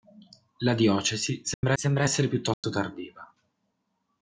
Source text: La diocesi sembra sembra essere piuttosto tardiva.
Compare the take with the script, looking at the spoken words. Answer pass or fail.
pass